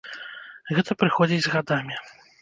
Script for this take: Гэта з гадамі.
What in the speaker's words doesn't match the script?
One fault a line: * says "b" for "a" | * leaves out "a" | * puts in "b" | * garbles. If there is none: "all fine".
* puts in "прыходзіць"